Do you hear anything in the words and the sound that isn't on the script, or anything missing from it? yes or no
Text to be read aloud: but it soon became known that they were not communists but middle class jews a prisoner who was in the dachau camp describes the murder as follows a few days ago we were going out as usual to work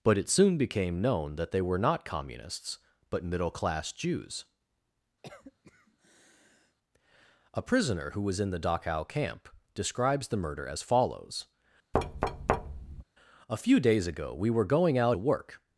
yes